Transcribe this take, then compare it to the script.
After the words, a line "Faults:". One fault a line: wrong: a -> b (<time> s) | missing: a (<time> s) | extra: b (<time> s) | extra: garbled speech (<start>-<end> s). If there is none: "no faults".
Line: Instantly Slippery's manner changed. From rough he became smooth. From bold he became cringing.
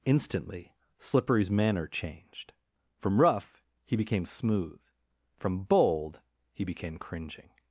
Instantly Slippery's manner changed. From rough he became smooth. From bold he became cringing.
Faults:
no faults